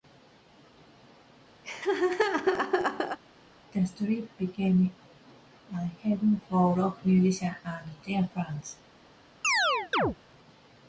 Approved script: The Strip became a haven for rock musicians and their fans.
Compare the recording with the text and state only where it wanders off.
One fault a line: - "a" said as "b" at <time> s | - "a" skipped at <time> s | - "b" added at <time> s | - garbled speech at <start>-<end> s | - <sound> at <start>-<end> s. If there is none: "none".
- laugh at 1.6-3.2 s
- chirp at 9.4-10.2 s